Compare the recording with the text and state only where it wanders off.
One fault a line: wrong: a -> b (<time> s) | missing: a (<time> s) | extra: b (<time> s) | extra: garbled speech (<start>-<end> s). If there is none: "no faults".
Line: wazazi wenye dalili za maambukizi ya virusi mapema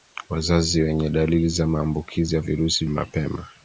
no faults